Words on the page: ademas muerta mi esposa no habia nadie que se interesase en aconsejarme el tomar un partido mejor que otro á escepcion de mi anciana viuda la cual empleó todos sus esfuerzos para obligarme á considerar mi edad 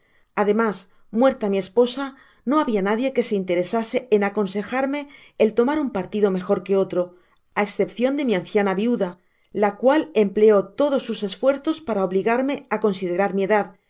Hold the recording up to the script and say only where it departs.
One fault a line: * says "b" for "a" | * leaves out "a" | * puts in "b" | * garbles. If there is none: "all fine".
all fine